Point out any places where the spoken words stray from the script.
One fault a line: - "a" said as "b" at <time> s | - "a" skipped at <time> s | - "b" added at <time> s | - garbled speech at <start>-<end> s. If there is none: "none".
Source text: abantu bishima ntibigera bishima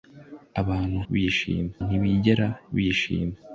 none